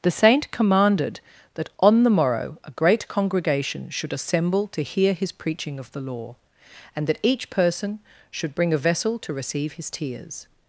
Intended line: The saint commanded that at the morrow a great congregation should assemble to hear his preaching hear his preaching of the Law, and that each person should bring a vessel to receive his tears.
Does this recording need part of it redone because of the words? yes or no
yes